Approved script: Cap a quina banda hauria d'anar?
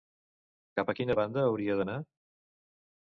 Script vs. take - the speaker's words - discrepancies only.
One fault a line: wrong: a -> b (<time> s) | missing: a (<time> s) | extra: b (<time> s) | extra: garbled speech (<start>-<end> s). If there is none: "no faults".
no faults